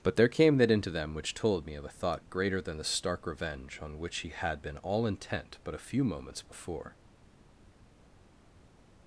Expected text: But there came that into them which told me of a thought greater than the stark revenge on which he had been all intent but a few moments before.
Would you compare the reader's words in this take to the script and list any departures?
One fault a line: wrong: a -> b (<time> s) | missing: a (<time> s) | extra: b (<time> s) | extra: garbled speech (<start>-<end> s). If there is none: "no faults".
no faults